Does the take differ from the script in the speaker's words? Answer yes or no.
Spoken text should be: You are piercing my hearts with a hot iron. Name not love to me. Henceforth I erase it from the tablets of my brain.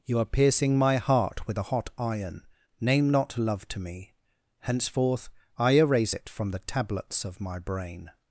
yes